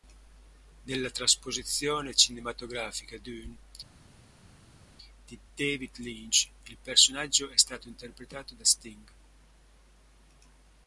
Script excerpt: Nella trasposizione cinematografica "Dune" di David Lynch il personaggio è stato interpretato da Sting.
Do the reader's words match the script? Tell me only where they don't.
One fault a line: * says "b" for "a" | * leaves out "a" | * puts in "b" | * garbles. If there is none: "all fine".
all fine